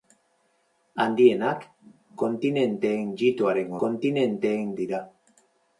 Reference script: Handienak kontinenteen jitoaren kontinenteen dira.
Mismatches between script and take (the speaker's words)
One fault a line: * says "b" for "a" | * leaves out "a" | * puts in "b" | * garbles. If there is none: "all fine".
all fine